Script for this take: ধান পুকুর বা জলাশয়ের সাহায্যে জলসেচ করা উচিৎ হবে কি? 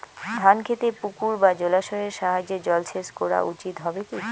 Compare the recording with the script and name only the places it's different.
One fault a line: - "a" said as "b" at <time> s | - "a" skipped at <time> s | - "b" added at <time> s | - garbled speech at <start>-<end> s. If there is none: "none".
- "খেতে" added at 0.6 s